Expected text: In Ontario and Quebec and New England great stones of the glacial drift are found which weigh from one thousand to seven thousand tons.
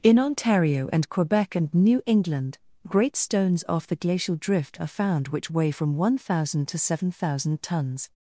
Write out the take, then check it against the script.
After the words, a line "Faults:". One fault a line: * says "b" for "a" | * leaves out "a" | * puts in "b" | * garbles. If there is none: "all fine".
In Ontario and Quebec and New England great stones off the glacial drift are found which weigh from one thousand to seven thousand tons.
Faults:
* says "off" for "of"